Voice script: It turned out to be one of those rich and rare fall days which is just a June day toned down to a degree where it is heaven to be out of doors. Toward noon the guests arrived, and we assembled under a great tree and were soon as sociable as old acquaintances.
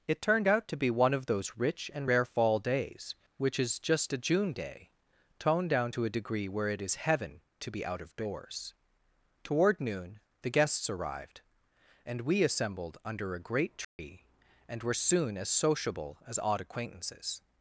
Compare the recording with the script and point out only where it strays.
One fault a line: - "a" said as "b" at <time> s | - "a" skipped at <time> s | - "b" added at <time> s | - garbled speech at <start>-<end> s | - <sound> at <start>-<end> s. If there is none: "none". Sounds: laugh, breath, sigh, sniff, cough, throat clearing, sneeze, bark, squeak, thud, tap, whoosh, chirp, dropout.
- dropout at 13.8-14.0 s
- "old" said as "odd" at 16.4 s